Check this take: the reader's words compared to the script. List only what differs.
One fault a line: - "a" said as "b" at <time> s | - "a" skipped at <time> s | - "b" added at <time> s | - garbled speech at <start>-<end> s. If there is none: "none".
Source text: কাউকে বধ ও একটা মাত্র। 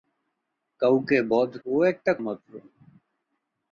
none